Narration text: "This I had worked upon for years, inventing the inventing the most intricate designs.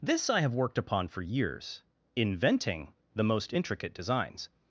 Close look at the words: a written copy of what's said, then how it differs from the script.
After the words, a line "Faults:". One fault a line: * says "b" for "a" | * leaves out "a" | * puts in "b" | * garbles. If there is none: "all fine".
"This I have worked upon for years, inventing the most intricate designs.
Faults:
* says "have" for "had"
* leaves out "inventing the"